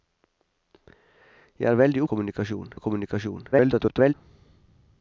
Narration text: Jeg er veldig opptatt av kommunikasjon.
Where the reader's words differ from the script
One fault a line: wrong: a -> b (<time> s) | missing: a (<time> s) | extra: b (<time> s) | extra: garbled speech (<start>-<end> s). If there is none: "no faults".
wrong: opptatt -> kommunikasjon (2.1 s)
extra: garbled speech (3.5-4.1 s)